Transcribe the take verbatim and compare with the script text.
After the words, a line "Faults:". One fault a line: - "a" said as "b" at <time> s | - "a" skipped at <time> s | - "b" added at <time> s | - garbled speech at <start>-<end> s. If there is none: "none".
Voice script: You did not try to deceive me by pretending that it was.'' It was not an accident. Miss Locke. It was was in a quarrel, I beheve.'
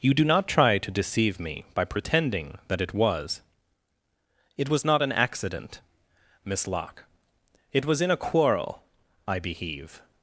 You do not try to deceive me by pretending that it was.'' It was not an accident. Miss Locke. It was in a quarrel, I beheve.'
Faults:
- "did" said as "do" at 0.1 s
- "was" skipped at 8.0 s